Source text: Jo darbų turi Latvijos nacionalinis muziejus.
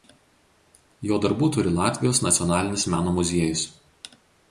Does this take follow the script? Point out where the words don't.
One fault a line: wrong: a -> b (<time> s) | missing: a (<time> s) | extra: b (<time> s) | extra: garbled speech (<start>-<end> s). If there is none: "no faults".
extra: meno (3.0 s)